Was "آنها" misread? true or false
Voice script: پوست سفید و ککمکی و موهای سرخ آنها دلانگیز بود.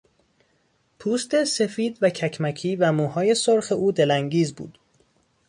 true